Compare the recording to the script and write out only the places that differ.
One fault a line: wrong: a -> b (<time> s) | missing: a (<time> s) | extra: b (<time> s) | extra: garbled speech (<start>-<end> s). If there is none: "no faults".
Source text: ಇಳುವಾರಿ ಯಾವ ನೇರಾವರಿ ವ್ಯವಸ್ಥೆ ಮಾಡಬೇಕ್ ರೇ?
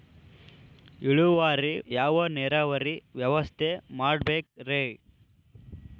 no faults